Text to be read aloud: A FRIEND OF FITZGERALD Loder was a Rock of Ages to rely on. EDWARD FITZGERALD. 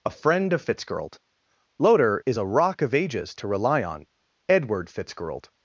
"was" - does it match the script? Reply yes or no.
no